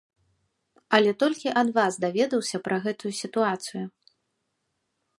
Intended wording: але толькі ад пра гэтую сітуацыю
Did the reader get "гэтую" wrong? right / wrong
right